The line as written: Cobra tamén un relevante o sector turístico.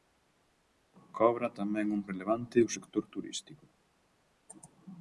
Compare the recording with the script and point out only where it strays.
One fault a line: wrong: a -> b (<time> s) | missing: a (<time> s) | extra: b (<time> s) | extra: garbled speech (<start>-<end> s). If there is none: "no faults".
no faults